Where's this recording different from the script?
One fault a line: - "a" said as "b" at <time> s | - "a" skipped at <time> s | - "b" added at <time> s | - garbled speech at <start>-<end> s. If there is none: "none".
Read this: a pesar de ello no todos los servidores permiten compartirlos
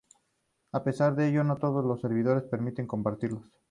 none